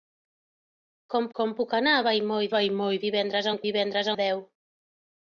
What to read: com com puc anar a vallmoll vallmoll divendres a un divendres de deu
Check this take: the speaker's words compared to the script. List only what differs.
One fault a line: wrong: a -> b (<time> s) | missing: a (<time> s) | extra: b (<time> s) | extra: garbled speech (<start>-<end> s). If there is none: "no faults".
no faults